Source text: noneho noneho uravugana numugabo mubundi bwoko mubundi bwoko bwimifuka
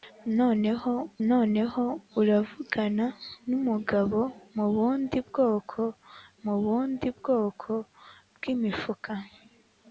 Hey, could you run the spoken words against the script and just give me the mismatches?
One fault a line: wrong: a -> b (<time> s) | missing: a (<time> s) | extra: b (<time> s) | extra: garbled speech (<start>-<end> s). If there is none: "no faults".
no faults